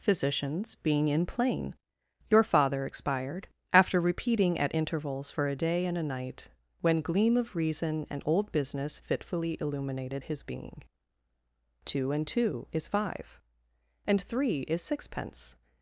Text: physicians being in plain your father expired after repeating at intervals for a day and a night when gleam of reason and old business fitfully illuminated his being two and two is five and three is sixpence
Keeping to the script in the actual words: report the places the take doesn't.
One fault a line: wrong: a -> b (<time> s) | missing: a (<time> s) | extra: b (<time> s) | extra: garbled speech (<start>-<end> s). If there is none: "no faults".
no faults